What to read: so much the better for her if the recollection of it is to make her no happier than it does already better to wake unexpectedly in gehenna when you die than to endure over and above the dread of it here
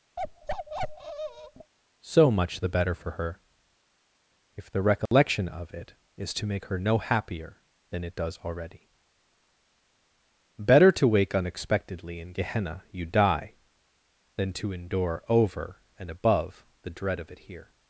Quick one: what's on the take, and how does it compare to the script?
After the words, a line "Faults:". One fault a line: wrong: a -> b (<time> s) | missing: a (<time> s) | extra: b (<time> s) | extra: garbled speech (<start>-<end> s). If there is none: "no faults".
so much the better for her if the recollection of it is to make her no happier than it does already better to wake unexpectedly in gehenna you die than to endure over and above the dread of it here
Faults:
missing: when (12.8 s)